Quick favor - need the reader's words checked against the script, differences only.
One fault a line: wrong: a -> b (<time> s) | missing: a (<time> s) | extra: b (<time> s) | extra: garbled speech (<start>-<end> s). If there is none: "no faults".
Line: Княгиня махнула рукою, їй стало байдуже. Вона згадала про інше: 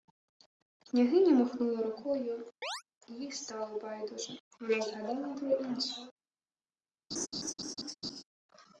no faults